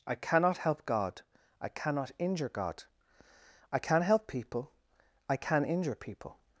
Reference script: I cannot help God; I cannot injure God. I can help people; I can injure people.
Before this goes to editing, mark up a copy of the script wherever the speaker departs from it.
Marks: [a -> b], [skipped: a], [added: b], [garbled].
I cannot help God; I cannot injure God. I can help people; I can injure people.